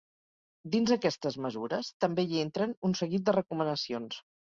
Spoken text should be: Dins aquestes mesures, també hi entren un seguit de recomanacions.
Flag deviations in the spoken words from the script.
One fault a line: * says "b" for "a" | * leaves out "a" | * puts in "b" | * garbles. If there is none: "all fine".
all fine